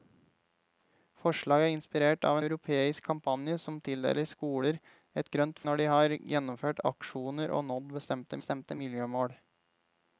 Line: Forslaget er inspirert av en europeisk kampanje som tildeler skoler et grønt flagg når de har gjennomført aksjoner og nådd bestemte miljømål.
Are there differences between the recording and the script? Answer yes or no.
yes